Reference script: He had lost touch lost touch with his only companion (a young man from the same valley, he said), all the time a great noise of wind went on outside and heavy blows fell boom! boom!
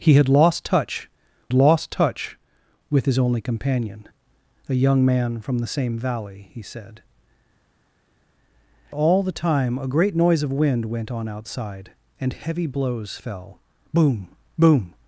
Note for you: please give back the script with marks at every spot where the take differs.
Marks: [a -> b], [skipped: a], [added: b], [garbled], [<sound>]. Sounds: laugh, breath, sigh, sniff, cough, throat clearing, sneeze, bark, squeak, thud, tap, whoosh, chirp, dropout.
He had lost touch lost touch with his only companion (a young man from the same valley, he said), all the time a great noise of wind went on outside and heavy blows fell boom! boom!